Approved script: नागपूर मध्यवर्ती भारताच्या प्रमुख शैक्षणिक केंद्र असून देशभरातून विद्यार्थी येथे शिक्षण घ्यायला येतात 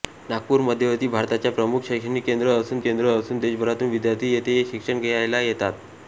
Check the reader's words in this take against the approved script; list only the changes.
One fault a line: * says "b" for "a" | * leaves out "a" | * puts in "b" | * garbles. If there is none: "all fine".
* puts in "केंद्र असून"